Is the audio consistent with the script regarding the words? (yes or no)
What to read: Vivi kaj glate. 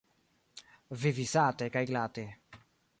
no